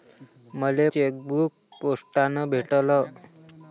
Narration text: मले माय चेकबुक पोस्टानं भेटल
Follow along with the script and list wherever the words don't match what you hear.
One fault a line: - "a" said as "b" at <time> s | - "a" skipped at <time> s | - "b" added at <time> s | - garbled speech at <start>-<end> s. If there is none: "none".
- "माय" skipped at 0.9 s